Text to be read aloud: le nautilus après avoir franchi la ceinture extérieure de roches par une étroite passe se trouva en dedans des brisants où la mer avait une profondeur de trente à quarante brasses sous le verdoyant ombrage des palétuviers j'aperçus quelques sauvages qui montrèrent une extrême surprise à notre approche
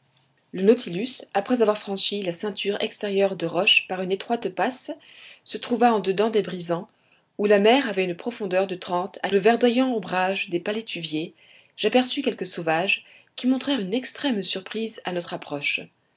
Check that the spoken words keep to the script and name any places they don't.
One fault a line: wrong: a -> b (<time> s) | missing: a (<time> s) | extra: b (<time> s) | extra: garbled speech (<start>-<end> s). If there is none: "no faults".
missing: quarante brasses sous (9.3 s)